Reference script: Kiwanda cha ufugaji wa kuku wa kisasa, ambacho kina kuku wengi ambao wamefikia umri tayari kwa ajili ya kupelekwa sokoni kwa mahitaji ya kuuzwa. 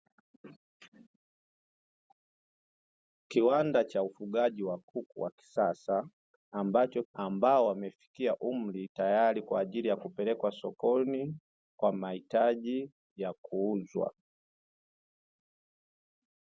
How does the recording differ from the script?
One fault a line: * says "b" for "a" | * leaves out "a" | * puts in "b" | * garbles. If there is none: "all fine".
* leaves out "kina kuku wengi"